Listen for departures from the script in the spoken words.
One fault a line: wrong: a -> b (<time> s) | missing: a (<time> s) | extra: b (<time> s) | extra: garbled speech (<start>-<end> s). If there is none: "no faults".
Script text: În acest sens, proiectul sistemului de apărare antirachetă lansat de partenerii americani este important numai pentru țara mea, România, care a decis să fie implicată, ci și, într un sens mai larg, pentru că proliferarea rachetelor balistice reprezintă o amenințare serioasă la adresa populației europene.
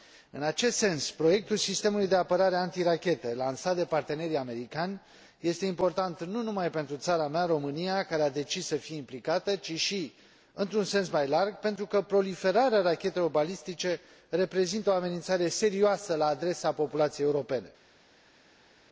extra: nu (6.2 s)